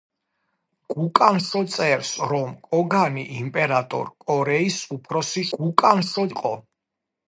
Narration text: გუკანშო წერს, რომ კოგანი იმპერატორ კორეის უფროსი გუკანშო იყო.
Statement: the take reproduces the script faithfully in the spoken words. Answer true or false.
true